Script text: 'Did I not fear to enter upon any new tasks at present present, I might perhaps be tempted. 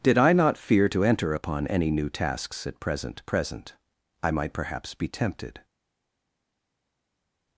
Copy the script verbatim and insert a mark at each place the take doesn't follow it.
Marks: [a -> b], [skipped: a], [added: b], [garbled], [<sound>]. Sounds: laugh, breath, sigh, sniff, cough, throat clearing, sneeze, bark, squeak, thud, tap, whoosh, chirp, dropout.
'Did I not fear to enter upon any new tasks at present present, I might perhaps be tempted.